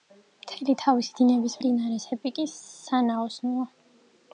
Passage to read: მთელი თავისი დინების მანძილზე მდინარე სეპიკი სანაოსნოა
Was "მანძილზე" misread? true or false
true